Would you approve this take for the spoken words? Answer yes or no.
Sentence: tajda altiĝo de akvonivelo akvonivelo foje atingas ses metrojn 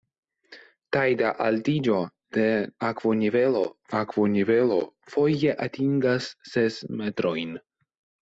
yes